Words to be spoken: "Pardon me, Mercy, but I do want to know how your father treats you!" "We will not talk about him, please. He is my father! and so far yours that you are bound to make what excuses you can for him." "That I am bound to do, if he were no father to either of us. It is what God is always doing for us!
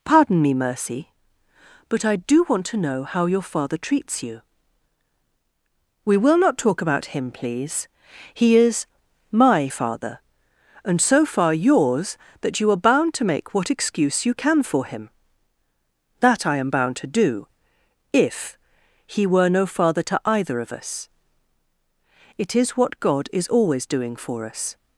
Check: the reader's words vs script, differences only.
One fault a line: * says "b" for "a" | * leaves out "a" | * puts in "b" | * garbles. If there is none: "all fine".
* says "excuse" for "excuses"